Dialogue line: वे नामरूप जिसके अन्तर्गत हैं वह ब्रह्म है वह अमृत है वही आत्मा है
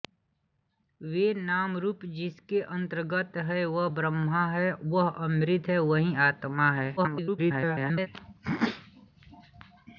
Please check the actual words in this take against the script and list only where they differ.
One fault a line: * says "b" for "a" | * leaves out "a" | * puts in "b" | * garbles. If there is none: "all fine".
* garbles